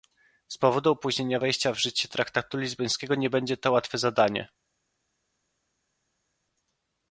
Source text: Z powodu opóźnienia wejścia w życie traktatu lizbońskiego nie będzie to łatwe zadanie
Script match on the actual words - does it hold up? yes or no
yes